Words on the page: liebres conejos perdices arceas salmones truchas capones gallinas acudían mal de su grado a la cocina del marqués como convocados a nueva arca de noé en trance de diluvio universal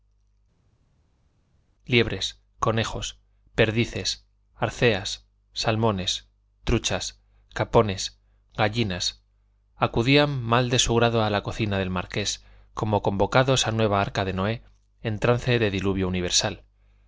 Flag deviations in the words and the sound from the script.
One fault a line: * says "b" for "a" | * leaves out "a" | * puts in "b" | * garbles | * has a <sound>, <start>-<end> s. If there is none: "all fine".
all fine